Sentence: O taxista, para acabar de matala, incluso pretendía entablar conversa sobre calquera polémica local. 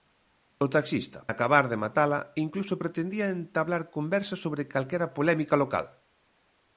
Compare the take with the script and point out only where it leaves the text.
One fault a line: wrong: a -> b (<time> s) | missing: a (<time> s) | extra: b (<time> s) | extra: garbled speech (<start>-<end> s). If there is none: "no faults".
missing: para (1.2 s)